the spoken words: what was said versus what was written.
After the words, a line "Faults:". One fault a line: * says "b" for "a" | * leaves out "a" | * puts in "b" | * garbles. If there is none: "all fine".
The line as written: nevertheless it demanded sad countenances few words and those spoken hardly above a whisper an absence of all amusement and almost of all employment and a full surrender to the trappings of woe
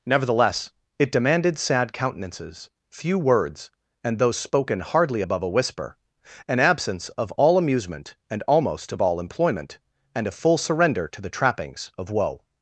nevertheless it demanded sad countenances few words and those spoken hardly above a whisper an absence of all amusement and almost of all employment and a full surrender to the trappings of woe
Faults:
all fine